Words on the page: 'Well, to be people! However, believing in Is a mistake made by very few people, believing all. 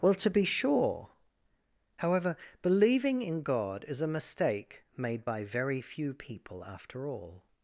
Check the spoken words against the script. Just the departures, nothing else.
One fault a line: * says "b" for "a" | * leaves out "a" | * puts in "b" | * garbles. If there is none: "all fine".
* says "sure" for "people"
* puts in "God"
* says "after" for "believing"